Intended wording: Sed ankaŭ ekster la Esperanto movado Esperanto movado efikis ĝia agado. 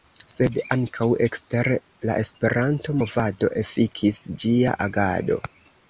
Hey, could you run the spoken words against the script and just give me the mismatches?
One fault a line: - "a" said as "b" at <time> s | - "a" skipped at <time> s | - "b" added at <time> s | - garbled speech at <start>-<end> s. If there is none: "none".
- "Esperanto movado" skipped at 3.5 s